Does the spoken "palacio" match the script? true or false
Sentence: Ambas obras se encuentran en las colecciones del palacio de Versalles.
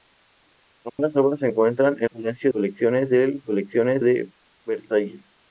false